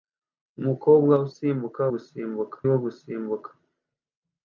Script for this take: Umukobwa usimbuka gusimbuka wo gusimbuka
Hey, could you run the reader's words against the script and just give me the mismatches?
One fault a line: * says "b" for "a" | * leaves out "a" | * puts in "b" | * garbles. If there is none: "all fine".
all fine